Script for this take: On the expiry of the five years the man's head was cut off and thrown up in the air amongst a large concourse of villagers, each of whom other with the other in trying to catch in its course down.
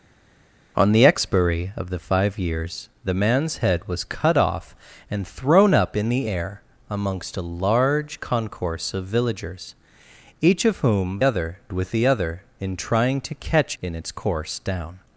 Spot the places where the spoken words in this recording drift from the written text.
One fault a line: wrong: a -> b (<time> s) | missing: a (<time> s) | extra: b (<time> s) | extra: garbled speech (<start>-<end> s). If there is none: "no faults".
no faults